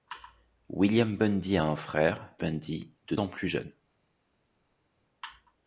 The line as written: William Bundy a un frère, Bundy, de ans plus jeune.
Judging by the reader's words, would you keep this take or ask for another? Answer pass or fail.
pass